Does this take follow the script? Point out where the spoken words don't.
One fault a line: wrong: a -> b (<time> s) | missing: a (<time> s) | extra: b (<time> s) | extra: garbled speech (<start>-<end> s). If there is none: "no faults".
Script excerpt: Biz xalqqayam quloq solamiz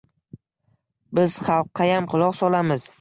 no faults